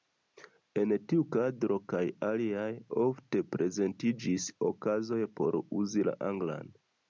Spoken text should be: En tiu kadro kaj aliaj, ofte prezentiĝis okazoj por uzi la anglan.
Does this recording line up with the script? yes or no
yes